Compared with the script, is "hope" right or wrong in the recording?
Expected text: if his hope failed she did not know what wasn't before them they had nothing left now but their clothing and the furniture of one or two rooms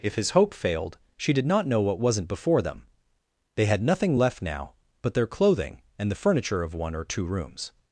right